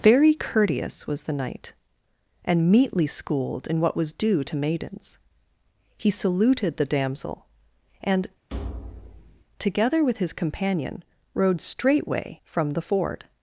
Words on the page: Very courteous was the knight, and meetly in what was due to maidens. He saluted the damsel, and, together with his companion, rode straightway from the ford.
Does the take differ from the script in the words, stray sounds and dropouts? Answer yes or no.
yes